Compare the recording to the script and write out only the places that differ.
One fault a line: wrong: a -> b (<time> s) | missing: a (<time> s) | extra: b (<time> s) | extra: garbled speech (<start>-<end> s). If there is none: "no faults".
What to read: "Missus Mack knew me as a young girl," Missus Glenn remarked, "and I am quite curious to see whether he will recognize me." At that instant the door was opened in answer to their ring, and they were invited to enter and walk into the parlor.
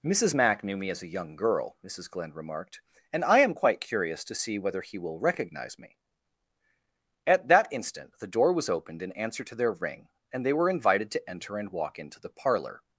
no faults